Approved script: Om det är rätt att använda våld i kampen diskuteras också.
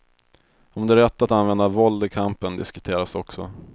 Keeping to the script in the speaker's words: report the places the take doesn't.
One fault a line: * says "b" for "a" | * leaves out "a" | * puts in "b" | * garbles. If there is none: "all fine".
all fine